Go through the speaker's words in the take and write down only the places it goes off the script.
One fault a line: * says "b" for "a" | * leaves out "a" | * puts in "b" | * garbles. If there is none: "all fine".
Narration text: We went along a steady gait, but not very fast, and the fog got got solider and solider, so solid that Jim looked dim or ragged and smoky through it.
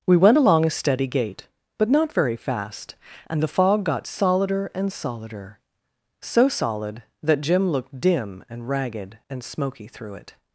* leaves out "got"
* says "and" for "or"